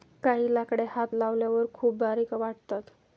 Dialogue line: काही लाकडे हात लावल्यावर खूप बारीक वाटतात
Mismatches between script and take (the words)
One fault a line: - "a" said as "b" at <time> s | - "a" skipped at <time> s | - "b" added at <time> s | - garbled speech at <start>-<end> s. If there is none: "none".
none